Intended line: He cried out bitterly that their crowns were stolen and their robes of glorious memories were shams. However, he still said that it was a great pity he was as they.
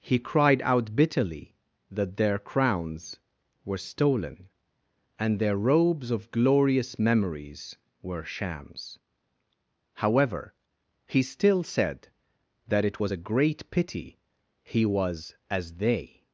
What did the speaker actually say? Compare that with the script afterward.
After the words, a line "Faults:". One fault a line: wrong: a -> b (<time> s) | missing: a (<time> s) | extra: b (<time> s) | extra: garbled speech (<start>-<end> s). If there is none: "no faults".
He cried out bitterly that their crowns were stolen and their robes of glorious memories were shams. However, he still said that it was a great pity he was as they.
Faults:
no faults